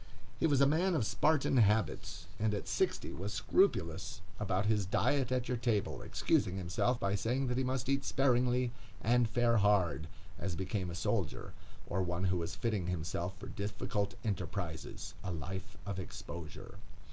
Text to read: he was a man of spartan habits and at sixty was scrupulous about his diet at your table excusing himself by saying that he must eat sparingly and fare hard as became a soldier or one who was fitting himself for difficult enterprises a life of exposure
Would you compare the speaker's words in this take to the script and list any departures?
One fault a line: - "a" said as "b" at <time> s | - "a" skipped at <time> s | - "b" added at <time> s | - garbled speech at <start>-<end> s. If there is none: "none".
none